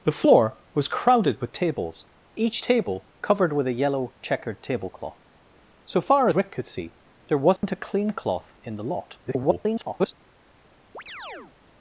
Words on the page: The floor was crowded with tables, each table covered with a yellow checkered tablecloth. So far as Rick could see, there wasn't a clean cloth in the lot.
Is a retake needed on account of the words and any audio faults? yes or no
yes